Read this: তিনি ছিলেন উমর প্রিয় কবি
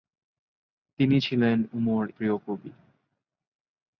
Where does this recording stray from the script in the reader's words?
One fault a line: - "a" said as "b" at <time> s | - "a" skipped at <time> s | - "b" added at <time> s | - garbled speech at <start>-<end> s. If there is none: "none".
none